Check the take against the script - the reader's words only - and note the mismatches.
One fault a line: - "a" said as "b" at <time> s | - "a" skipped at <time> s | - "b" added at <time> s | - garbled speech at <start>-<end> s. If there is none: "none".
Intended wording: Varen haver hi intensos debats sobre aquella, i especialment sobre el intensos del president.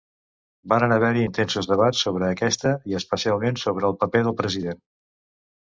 - "aquella" said as "aquesta" at 2.4 s
- "intensos" said as "paper" at 4.0 s